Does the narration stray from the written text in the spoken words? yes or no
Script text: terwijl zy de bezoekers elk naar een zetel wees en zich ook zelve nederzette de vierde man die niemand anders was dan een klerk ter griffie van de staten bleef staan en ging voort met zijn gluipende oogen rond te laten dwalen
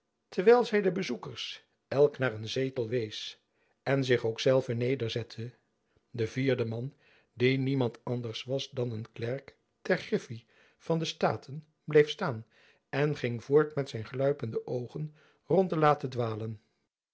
no